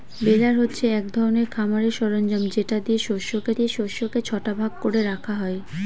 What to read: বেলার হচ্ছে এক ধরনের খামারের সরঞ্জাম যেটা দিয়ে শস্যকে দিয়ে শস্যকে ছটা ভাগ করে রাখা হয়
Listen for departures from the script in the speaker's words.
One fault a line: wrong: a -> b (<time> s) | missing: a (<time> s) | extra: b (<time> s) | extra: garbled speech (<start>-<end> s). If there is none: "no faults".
no faults